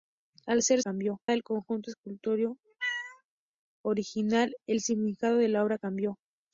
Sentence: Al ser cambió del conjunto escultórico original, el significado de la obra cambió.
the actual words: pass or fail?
pass